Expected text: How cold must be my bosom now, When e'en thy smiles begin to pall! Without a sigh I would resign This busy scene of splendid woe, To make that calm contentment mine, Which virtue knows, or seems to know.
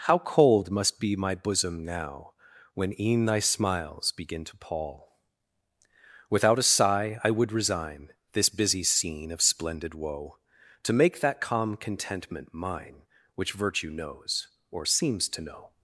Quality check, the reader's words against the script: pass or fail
pass